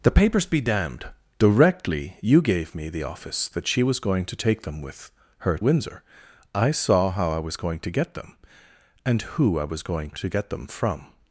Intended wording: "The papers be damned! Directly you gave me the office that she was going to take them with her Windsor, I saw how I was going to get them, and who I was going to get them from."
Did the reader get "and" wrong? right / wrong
right